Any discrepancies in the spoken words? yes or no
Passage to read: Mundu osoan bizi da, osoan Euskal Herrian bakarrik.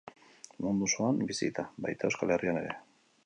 yes